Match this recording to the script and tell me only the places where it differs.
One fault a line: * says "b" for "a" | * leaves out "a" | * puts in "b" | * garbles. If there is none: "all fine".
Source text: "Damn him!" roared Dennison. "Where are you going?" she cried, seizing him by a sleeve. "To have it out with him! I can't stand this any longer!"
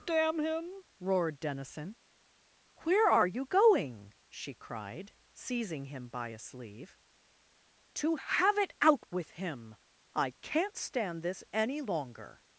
all fine